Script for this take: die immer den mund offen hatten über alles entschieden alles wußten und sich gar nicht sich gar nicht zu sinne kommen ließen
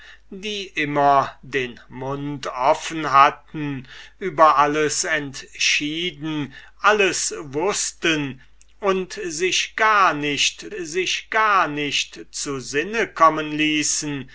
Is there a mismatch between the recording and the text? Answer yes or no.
no